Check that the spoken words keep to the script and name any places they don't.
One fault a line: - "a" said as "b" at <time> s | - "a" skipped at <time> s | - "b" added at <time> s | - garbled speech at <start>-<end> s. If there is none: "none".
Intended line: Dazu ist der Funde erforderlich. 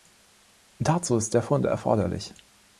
none